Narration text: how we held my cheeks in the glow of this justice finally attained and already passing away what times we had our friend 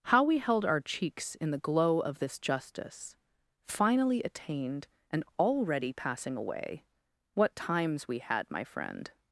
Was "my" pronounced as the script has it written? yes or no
no